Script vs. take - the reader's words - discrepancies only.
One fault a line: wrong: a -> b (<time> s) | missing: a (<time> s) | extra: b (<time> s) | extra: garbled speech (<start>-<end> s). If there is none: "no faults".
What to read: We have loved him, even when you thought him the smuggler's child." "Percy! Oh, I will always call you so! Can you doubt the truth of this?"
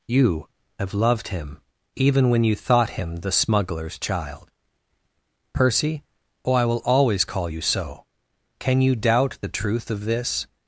wrong: We -> You (0.1 s)